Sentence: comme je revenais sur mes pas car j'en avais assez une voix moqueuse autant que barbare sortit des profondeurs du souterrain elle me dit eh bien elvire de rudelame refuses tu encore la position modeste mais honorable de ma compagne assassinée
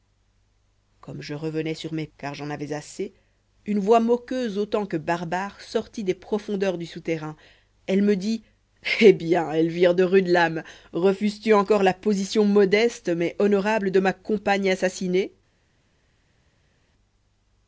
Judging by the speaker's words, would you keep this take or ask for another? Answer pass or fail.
fail